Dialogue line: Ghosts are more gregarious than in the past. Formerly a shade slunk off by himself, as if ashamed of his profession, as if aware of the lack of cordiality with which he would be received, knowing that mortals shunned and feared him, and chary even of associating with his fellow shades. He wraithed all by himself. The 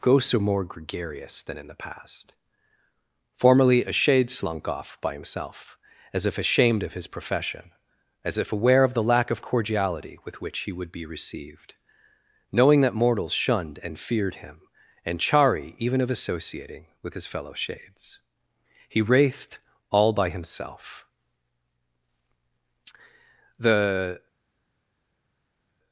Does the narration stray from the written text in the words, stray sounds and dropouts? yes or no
no